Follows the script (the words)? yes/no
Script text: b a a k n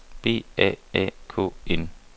yes